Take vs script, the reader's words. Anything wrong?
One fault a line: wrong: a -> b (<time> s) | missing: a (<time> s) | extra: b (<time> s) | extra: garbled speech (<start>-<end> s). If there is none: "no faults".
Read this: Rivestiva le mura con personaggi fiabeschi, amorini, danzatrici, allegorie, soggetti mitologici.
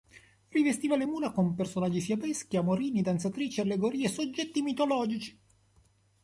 no faults